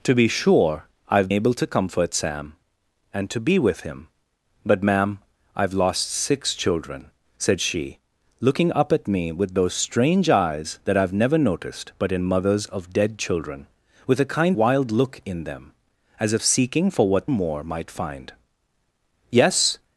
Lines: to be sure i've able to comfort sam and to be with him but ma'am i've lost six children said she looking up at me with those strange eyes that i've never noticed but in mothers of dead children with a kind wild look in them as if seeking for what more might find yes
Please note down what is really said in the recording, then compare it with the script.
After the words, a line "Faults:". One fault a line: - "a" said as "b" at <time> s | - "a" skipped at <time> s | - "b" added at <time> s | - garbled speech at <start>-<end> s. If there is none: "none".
to be sure i've able to comfort sam and to be with him but ma'am i've lost six children said she looking up at me with those strange eyes that i've never noticed but in mothers of dead children with a kind wild look in them as if seeking for what more might find yes
Faults:
none